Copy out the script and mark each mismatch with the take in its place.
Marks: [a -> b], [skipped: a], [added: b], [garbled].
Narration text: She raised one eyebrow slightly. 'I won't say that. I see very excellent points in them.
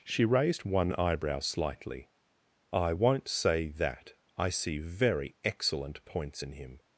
She raised one eyebrow slightly. 'I won't say that. I see very excellent points in [them. -> him]